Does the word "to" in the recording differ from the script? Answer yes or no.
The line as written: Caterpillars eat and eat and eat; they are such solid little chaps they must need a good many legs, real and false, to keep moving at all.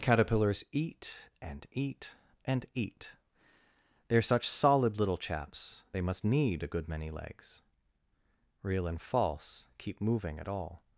yes